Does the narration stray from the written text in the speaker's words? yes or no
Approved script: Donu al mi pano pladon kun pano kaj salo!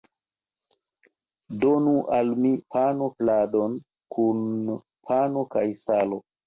no